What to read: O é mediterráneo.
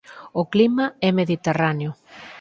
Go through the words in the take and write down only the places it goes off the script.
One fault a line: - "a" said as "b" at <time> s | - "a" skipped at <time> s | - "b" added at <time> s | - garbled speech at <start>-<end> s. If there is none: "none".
- "clima" added at 0.5 s